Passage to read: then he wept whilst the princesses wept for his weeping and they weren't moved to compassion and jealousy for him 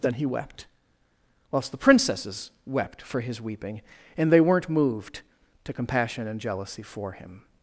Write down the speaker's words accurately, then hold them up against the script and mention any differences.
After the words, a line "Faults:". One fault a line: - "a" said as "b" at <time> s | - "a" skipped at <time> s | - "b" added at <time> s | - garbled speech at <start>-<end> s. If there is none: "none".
then he wept whilst the princesses wept for his weeping and they weren't moved to compassion and jealousy for him
Faults:
none